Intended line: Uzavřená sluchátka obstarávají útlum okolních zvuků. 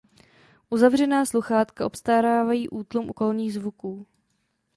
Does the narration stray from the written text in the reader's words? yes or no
no